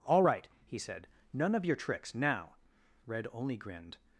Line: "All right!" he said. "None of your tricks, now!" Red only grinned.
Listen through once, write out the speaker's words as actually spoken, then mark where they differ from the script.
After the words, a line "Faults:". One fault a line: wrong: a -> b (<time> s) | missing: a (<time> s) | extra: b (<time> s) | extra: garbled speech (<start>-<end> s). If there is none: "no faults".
"All right!" he said. "None of your tricks, now!" Red only grinned.
Faults:
no faults